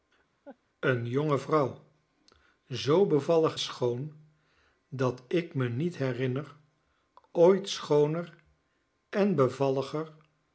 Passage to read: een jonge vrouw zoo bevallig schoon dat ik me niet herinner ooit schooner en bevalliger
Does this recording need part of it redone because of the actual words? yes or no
no